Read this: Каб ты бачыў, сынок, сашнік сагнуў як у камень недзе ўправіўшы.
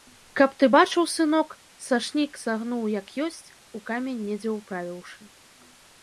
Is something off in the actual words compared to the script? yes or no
yes